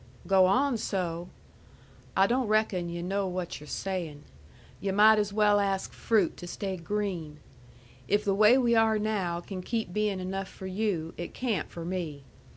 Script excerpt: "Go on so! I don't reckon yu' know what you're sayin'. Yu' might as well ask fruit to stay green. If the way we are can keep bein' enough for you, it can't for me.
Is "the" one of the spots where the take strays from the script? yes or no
no